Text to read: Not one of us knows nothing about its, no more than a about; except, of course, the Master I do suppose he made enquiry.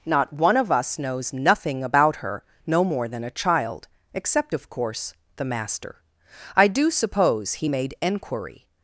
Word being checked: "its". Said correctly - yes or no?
no